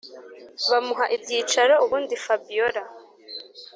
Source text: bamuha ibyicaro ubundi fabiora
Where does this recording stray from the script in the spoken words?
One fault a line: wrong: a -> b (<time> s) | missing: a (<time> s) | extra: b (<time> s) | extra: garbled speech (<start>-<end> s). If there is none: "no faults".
no faults